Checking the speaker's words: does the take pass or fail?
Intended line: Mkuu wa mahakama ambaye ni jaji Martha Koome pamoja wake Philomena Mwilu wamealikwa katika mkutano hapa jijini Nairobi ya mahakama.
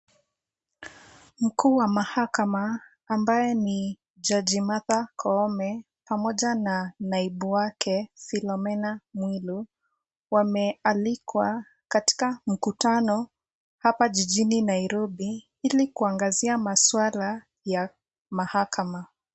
fail